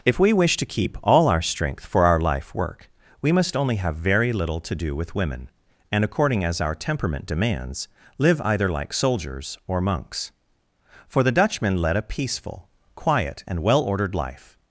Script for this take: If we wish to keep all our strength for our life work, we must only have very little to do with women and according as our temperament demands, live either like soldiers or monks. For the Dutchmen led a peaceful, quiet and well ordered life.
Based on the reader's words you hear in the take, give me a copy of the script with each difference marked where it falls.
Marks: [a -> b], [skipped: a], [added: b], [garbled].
If we wish to keep all our strength for our life work, we must only have very little to do with women and according as our temperament demands, live either like soldiers or monks. For the Dutchmen led a peaceful, quiet and well ordered life.